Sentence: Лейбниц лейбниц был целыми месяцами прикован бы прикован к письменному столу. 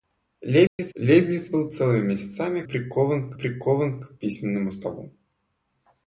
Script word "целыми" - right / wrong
right